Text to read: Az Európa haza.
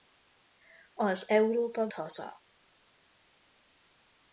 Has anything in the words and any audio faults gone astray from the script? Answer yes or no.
no